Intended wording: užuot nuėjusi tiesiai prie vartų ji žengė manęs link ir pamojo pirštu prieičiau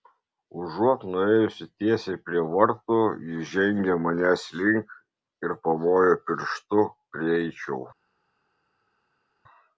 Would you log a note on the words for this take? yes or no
no